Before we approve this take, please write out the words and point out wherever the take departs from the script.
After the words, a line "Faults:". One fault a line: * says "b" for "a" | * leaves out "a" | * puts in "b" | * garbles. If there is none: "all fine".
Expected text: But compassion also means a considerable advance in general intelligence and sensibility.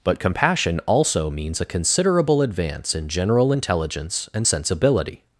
But compassion also means a considerable advance in general intelligence and sensibility.
Faults:
all fine